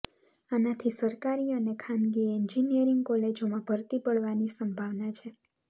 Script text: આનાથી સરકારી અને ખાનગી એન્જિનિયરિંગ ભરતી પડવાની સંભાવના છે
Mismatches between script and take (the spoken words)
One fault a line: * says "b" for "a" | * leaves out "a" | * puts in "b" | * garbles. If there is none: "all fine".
* puts in "કોલેજોમાં"